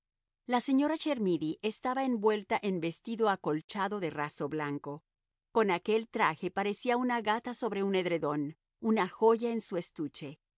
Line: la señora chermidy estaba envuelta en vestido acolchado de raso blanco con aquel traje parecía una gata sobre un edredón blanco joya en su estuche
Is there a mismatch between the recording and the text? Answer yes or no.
yes